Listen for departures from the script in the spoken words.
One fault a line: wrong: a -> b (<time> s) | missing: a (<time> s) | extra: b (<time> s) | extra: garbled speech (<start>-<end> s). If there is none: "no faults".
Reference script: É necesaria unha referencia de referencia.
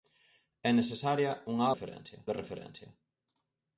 no faults